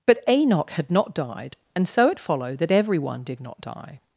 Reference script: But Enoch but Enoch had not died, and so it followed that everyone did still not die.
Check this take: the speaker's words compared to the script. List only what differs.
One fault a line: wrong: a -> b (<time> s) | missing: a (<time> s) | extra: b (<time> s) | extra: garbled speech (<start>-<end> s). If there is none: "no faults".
missing: but Enoch (0.7 s)
missing: still (3.4 s)